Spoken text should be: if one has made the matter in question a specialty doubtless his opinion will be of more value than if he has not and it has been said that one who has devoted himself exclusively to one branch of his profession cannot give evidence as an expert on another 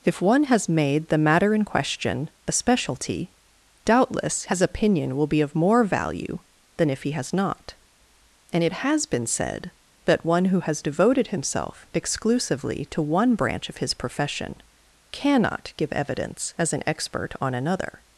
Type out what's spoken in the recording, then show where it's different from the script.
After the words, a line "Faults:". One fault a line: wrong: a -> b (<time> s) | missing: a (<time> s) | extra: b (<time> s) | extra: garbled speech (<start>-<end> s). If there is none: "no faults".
if one has made the matter in question a specialty doubtless his opinion will be of more value than if he has not and it has been said that one who has devoted himself exclusively to one branch of his profession cannot give evidence as an expert on another
Faults:
no faults